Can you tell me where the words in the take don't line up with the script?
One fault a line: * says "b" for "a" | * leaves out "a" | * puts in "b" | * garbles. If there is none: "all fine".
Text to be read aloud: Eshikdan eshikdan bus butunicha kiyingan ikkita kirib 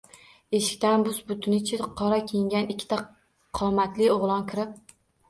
* leaves out "eshikdan"
* puts in "qora"
* puts in "qomatli o‘g‘lon"